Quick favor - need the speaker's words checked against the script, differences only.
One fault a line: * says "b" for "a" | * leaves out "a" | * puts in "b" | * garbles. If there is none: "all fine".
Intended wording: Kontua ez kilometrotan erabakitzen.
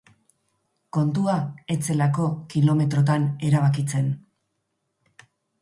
* puts in "zelako"